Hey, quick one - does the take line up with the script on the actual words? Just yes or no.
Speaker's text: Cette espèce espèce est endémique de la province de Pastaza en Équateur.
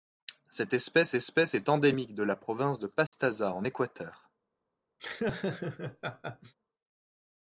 yes